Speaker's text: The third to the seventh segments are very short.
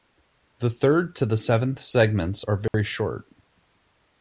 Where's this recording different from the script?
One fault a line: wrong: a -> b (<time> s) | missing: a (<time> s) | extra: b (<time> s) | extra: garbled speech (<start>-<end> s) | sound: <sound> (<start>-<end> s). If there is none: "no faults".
sound: dropout (2.7-2.7 s)